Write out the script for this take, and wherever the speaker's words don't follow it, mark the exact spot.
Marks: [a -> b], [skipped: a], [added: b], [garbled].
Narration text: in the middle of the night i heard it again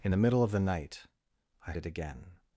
in the middle of the night i [skipped: heard] it again